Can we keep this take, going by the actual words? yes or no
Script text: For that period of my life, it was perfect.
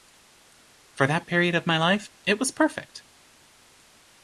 yes